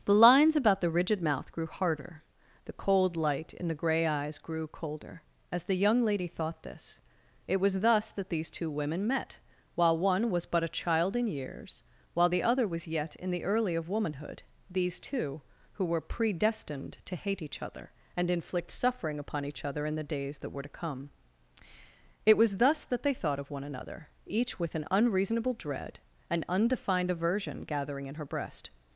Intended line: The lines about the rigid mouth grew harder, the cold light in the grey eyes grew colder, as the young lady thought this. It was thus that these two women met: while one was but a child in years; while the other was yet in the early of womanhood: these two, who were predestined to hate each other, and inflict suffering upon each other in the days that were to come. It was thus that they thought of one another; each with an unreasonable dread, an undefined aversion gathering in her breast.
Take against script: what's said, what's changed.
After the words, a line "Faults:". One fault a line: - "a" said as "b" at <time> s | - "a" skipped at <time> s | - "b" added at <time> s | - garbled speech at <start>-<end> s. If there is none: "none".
The lines about the rigid mouth grew harder, the cold light in the grey eyes grew colder, as the young lady thought this. It was thus that these two women met: while one was but a child in years; while the other was yet in the early of womanhood: these two, who were predestined to hate each other, and inflict suffering upon each other in the days that were to come. It was thus that they thought of one another; each with an unreasonable dread, an undefined aversion gathering in her breast.
Faults:
none